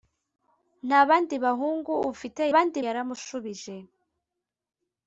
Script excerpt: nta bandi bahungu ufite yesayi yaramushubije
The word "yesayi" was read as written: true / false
false